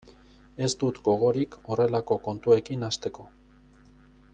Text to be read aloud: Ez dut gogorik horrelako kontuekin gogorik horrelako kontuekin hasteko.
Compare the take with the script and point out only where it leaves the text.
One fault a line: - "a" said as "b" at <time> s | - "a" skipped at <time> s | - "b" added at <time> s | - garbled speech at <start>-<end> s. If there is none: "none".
- "gogorik horrelako kontuekin" skipped at 2.9 s